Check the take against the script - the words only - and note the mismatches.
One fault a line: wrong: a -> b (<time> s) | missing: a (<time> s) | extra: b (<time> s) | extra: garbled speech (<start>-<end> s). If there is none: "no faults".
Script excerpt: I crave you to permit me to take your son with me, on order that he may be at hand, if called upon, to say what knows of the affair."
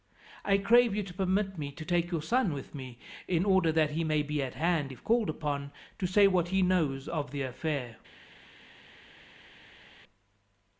wrong: on -> in (3.3 s)
extra: he (6.5 s)